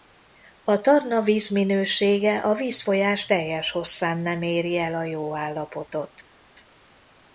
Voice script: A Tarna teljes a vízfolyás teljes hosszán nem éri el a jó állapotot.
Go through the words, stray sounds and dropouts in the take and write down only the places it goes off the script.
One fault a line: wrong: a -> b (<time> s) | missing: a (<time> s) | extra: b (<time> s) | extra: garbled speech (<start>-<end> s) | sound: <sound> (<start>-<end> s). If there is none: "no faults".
wrong: teljes -> vízminősége (1.2 s)